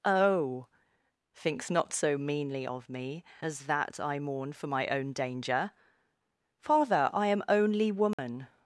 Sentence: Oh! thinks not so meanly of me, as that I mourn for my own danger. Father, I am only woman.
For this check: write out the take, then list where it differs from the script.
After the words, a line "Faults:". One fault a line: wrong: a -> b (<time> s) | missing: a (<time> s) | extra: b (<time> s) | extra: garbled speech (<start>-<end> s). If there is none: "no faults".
Oh! thinks not so meanly of me, as that I mourn for my own danger. Father, I am only woman.
Faults:
no faults